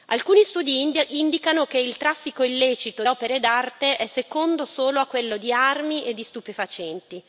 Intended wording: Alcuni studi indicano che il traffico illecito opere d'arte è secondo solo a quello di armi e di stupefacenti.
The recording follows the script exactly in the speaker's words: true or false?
true